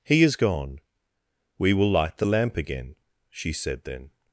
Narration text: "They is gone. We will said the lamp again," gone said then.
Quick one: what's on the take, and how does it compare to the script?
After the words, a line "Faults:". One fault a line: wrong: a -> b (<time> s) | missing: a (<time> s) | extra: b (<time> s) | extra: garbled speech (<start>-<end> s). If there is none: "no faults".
"He is gone. We will light the lamp again," she said then.
Faults:
wrong: They -> He (0.0 s)
wrong: said -> light (1.9 s)
wrong: gone -> she (3.3 s)